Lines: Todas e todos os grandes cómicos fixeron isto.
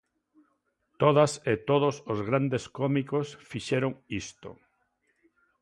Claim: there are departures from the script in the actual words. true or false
false